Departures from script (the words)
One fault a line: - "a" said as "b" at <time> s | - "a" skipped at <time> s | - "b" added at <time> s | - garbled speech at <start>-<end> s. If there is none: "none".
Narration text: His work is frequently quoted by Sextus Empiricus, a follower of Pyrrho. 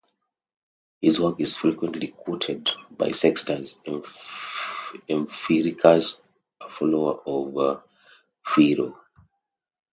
none